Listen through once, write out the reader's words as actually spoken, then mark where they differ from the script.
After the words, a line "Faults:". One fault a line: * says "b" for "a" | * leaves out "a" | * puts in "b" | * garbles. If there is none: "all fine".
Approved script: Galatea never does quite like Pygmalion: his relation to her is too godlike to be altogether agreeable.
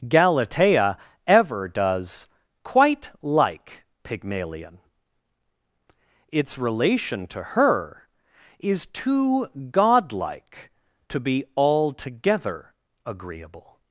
Galatea ever does quite like Pygmalion: its relation to her is too godlike to be altogether agreeable.
Faults:
* says "ever" for "never"
* says "its" for "his"